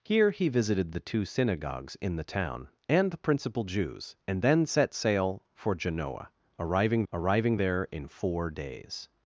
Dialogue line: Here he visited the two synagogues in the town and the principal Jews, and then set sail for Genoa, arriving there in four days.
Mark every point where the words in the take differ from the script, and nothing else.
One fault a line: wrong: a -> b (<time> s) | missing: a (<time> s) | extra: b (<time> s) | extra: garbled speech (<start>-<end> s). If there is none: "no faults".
extra: arriving (7.1 s)